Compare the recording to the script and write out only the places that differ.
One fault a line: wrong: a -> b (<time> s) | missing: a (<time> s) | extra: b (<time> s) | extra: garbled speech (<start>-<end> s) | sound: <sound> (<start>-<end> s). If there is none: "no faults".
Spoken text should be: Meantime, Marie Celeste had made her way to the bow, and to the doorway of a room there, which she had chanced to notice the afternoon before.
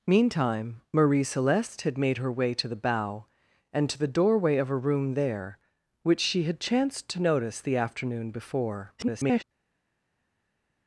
extra: garbled speech (9.0-9.4 s)